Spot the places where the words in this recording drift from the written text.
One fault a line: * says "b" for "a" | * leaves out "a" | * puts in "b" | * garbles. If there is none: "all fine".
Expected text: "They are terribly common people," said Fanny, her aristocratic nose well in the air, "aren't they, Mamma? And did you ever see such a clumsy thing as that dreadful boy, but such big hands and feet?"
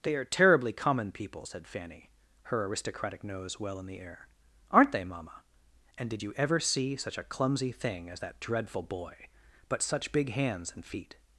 all fine